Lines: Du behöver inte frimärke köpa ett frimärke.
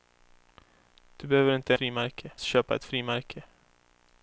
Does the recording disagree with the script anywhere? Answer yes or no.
no